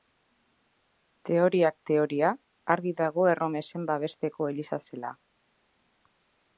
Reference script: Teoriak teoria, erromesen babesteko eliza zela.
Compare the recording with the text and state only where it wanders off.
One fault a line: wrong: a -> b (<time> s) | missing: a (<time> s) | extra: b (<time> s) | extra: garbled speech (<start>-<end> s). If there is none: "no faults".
extra: argi dago (2.8 s)